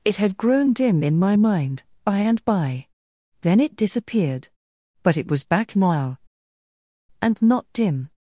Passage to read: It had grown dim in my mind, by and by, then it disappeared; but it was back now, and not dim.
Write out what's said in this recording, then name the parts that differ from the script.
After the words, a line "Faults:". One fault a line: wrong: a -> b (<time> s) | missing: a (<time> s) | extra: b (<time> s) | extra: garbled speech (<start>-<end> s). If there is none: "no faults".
It had grown dim in my mind, by and by, then it disappeared; but it was back now, and not dim.
Faults:
no faults